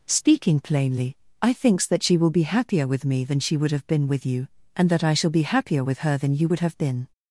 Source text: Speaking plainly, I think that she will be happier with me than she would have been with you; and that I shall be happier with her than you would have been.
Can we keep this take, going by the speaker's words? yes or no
no